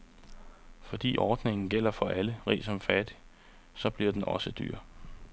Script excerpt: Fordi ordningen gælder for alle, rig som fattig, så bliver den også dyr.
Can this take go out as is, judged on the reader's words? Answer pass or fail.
pass